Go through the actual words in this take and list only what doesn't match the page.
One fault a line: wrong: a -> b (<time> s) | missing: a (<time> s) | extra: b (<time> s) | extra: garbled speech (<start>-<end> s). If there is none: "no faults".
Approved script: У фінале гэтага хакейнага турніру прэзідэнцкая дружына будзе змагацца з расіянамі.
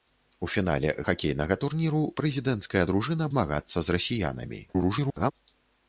missing: гэтага (0.9 s)
missing: будзе (3.3 s)
extra: garbled speech (4.7-5.3 s)